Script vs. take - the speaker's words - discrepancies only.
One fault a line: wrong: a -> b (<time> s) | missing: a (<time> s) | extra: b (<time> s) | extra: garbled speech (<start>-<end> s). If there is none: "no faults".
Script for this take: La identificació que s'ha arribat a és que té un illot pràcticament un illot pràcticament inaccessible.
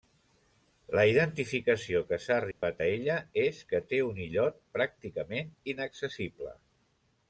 extra: ella (2.9 s)
missing: un illot pràcticament (5.5 s)